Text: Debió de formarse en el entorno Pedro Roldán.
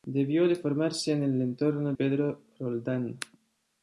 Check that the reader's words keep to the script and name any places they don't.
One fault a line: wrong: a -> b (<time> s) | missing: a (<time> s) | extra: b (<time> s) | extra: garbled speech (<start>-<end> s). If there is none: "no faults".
no faults